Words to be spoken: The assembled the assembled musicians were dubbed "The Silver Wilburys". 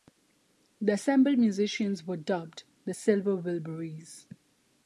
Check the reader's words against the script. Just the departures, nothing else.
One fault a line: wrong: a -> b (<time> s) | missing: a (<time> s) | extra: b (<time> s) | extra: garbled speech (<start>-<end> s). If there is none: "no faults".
missing: the assembled (1.4 s)